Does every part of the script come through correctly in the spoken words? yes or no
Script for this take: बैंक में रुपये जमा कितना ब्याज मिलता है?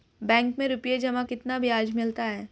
yes